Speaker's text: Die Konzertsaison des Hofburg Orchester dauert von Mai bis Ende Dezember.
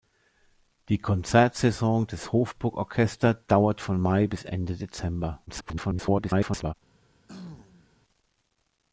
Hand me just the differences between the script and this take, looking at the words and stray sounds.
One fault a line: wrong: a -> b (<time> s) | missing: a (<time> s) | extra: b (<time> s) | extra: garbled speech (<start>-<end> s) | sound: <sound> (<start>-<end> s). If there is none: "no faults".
extra: garbled speech (5.5-6.7 s)
sound: throat clearing (7.3-7.9 s)